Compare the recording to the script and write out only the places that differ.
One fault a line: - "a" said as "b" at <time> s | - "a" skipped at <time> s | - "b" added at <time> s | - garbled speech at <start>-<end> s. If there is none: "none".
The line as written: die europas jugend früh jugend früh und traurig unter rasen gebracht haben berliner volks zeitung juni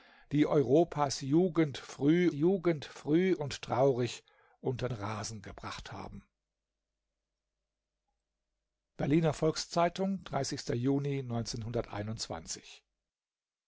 none